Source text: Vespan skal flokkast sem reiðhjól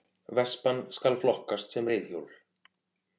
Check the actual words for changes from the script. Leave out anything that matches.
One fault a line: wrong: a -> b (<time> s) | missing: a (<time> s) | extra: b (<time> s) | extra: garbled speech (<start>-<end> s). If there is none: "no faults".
no faults